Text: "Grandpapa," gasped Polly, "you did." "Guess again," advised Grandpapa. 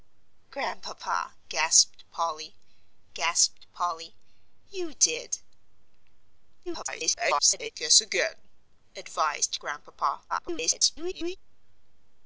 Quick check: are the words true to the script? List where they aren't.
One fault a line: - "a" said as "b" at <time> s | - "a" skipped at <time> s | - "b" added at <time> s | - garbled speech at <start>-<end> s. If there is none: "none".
- "gasped Polly" added at 3.1 s
- garbled speech at 6.7-7.7 s
- garbled speech at 10.3-11.4 s